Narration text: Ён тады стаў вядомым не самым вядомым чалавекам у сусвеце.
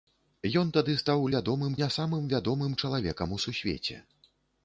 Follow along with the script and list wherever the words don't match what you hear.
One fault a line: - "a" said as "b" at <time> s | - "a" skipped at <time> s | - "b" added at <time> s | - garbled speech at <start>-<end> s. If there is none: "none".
none